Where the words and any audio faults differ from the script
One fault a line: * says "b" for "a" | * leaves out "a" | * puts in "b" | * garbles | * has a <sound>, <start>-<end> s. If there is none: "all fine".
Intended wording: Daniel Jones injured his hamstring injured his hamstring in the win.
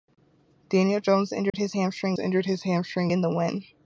* has a dropout, 1.5-1.5 s